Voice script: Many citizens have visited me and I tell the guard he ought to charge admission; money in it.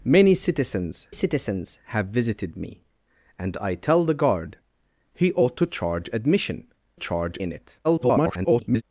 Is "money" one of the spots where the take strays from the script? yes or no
yes